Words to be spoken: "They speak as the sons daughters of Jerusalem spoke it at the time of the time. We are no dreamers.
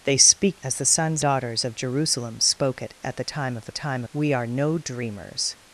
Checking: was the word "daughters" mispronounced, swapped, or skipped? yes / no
no